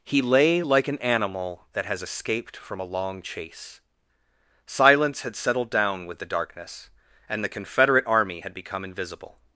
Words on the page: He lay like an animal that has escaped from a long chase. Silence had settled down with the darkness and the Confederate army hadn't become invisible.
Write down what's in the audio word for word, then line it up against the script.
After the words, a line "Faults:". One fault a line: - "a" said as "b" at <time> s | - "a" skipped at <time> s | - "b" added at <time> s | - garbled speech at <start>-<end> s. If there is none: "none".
He lay like an animal that has escaped from a long chase. Silence had settled down with the darkness and the Confederate army had become invisible.
Faults:
- "hadn't" said as "had" at 8.4 s